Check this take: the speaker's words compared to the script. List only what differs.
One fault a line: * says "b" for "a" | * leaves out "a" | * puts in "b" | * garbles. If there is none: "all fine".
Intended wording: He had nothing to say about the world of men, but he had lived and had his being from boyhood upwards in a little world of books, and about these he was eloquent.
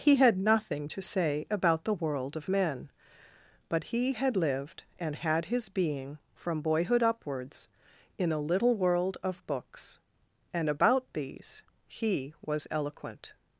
all fine